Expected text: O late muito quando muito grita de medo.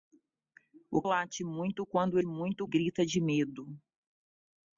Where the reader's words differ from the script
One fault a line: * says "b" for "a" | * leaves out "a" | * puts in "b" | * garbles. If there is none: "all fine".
all fine